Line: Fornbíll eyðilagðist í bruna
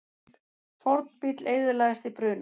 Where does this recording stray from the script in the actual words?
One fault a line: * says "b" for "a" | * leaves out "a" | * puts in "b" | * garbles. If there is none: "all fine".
all fine